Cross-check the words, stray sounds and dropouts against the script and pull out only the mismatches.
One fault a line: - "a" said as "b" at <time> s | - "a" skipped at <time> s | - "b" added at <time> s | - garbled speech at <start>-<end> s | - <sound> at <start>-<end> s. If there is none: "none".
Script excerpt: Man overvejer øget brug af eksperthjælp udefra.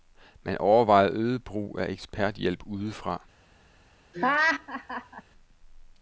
- laugh at 4.1-5.2 s